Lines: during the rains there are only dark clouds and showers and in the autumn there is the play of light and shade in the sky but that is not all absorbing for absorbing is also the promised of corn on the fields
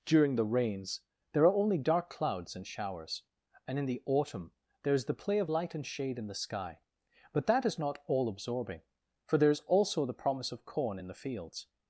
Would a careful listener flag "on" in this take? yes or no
yes